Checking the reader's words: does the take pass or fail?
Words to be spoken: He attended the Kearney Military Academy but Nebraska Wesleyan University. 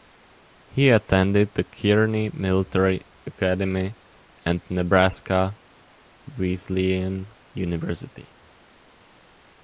fail